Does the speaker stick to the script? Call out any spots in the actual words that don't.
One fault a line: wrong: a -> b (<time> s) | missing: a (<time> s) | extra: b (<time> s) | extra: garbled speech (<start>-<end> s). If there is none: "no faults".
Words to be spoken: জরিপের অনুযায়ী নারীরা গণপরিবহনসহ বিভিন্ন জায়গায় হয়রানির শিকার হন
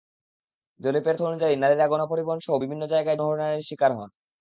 no faults